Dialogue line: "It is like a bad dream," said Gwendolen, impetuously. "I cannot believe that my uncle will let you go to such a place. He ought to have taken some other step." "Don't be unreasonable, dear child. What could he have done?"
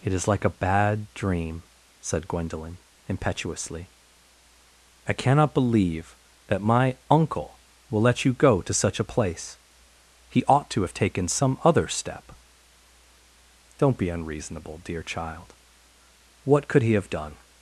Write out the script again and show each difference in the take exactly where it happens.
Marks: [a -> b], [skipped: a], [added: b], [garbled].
"It is like a bad dream," said Gwendolen, impetuously. "I cannot believe that my uncle will let you go to such a place. He ought to have taken some other step." "Don't be unreasonable, dear child. What could he have done?"